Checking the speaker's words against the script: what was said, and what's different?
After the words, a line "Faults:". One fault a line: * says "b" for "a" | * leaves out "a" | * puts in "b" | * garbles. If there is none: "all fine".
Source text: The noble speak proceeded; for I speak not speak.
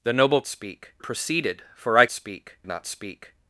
The noble speak proceeded; for I speak not speak.
Faults:
all fine